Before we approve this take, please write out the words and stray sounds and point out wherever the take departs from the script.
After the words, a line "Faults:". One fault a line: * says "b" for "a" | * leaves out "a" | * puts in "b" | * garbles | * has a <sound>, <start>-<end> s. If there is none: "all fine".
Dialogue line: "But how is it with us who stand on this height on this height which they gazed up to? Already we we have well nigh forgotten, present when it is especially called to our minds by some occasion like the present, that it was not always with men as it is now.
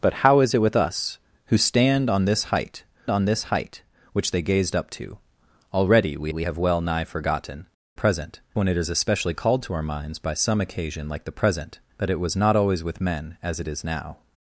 "But how is it with us who stand on this height on this height which they gazed up to? Already we we have well nigh forgotten, present when it is especially called to our minds by some occasion like the present, that it was not always with men as it is now.
Faults:
all fine